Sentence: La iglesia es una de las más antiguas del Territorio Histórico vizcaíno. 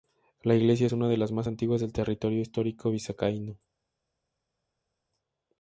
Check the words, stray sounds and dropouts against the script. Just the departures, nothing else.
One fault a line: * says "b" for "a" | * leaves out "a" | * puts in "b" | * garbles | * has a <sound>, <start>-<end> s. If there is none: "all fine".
all fine